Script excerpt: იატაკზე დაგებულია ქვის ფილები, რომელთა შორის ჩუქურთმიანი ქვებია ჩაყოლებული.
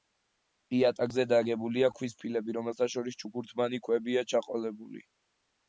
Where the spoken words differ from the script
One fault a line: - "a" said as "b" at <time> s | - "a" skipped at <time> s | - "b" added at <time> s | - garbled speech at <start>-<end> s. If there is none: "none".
none